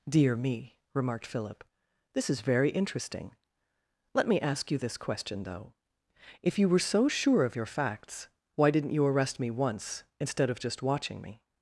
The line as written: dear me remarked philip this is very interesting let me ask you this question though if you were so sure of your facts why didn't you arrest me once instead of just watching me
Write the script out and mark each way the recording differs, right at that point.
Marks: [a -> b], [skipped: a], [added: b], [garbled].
dear me remarked philip this is very interesting let me ask you this question though if you were so sure of your facts why didn't you arrest me once instead of just watching me